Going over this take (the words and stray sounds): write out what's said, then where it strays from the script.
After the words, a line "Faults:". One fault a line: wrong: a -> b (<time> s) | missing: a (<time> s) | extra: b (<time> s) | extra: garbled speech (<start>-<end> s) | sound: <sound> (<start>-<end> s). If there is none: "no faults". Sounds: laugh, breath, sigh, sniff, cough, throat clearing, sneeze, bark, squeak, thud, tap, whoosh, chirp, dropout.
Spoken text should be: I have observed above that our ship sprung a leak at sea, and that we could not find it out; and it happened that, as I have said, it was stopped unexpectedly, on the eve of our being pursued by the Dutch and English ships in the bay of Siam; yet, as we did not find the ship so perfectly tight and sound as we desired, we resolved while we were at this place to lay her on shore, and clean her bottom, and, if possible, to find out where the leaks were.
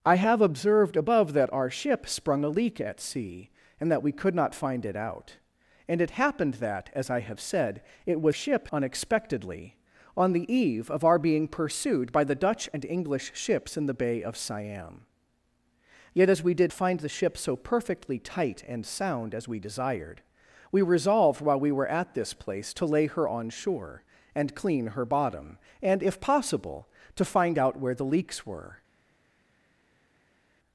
I have observed above that our ship sprung a leak at sea, and that we could not find it out; and it happened that, as I have said, it was ship unexpectedly, on the eve of our being pursued by the Dutch and English ships in the bay of Siam; yet, as we did find the ship so perfectly tight and sound as we desired, we resolved while we were at this place to lay her on shore, and clean her bottom, and, if possible, to find out where the leaks were.
Faults:
wrong: stopped -> ship (8.3 s)
missing: not (16.7 s)